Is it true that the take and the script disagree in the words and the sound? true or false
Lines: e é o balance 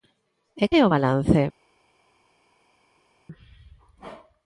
false